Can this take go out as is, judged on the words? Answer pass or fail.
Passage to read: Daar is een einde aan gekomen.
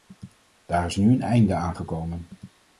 fail